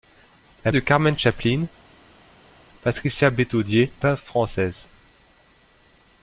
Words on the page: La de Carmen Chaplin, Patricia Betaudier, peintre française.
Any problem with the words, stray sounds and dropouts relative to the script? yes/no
no